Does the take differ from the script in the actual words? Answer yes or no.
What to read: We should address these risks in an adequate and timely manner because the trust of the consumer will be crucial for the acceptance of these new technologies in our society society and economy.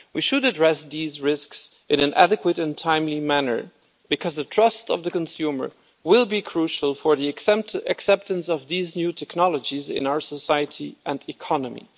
yes